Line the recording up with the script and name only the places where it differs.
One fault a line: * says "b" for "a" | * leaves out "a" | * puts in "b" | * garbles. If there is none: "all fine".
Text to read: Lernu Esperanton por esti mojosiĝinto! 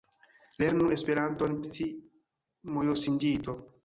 * leaves out "por"